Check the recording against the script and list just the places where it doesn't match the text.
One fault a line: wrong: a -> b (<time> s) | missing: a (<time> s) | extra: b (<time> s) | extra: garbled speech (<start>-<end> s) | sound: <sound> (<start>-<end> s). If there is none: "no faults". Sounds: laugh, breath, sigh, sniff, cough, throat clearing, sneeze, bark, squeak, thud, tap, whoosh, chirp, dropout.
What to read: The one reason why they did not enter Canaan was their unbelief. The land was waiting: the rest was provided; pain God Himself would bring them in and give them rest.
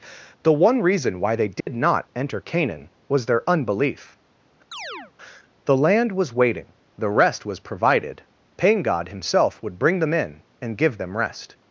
sound: dropout (1.6-1.7 s)
sound: chirp (4.7-5.1 s)